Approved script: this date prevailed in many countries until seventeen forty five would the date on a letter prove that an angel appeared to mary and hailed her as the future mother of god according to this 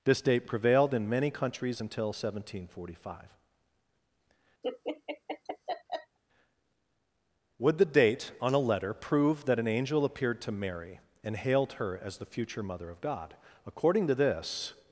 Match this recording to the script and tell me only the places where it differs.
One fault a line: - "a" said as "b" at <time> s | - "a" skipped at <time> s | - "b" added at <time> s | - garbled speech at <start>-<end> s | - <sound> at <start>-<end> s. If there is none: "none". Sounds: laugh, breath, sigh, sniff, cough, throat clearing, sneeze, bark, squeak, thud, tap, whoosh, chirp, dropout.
- laugh at 4.6-6.2 s